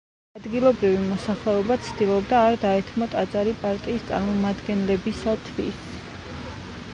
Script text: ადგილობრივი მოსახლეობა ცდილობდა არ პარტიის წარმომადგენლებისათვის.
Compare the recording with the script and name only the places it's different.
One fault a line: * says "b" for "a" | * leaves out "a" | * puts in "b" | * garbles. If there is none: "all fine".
* puts in "დაეთმო ტაძარი"